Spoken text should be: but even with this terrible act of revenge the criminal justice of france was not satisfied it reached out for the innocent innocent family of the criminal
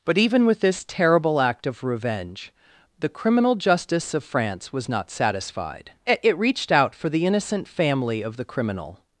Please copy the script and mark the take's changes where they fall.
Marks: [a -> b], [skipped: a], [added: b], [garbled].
but even with this terrible act of revenge the criminal justice of france was not satisfied it reached out for the innocent [skipped: innocent] family of the criminal